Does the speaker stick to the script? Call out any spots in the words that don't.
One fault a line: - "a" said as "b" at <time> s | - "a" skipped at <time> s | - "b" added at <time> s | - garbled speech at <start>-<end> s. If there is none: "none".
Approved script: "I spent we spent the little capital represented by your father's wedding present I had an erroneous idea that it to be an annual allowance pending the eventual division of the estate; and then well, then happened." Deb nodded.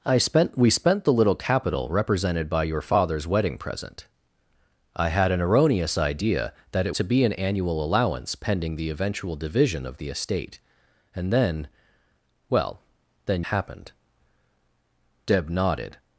none